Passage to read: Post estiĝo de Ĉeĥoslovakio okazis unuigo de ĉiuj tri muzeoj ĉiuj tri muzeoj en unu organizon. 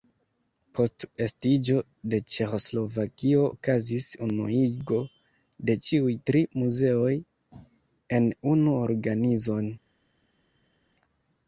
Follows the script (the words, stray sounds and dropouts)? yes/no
no